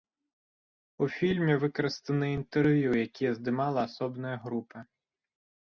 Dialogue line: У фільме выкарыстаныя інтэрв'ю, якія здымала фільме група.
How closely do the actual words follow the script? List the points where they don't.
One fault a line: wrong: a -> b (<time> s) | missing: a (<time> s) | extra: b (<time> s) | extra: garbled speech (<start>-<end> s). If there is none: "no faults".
wrong: фільме -> асобная (3.9 s)